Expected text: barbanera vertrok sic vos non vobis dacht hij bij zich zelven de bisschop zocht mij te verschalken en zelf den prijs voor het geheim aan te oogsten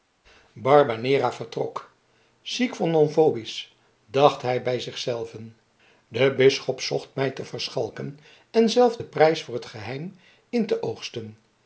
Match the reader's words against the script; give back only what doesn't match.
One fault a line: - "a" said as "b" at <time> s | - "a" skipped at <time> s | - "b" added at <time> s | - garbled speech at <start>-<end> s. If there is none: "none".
- "aan" said as "in" at 10.5 s